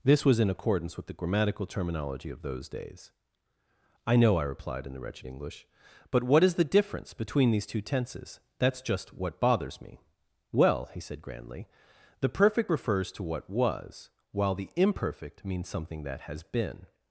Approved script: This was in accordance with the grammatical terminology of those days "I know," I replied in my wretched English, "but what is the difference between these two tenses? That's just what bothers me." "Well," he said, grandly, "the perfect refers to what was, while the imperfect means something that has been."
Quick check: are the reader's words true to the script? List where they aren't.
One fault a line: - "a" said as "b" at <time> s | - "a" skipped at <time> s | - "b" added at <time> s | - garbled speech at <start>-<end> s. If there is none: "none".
- "my" said as "the" at 4.9 s